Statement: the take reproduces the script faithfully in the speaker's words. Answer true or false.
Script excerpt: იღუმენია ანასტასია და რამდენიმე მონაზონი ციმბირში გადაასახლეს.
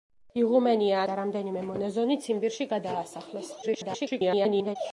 false